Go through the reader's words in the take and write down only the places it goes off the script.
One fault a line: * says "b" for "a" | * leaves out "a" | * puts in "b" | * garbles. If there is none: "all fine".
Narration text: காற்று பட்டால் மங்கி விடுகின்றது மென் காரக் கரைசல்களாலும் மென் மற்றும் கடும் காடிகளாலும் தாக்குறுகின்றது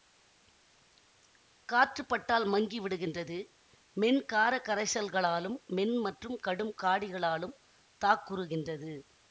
all fine